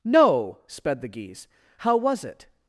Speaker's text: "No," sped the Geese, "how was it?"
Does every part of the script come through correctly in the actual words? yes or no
yes